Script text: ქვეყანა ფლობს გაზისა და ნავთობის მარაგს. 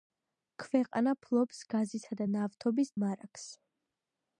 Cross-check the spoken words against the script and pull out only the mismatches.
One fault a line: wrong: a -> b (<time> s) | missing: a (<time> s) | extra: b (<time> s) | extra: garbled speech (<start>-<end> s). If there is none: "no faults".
no faults